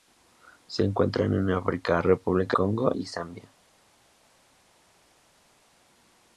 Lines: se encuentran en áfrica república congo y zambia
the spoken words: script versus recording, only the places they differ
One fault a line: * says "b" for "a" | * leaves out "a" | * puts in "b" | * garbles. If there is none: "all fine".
all fine